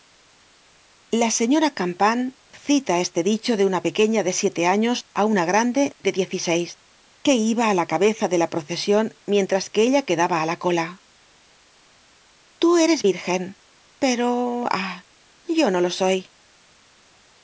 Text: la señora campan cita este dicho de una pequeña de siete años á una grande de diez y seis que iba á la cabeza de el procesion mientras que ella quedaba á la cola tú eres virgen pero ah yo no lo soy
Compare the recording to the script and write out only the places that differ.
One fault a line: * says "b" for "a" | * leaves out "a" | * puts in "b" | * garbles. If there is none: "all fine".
* says "la" for "el"